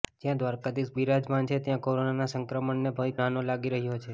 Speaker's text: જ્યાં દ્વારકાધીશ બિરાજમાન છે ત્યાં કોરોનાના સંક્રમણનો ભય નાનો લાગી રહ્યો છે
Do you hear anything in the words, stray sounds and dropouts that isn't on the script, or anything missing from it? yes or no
no